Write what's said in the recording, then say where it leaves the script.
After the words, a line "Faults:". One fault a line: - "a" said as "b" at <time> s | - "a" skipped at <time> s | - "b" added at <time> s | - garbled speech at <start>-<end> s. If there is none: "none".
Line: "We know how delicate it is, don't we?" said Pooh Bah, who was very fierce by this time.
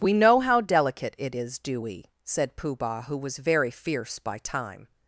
"We know how delicate it is, do we?" said Pooh Bah, who was very fierce by time.
Faults:
- "don't" said as "do" at 1.6 s
- "this" skipped at 4.4 s